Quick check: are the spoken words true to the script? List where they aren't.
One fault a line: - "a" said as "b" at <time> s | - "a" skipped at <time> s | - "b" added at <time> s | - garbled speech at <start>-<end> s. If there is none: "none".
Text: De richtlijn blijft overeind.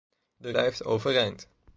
- "richtlijn" skipped at 0.5 s